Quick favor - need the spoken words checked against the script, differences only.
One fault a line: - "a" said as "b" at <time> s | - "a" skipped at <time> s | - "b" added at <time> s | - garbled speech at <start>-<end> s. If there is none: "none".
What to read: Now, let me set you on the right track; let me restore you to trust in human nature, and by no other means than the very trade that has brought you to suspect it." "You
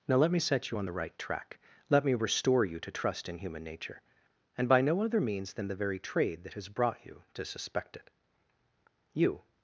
none